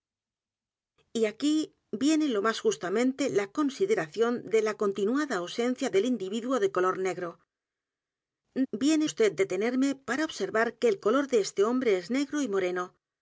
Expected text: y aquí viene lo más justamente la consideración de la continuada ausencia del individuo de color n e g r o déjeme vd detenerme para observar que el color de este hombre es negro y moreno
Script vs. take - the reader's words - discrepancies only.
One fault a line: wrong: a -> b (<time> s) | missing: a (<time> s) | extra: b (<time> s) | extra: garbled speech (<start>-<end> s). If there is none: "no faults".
wrong: déjeme -> viene (8.7 s)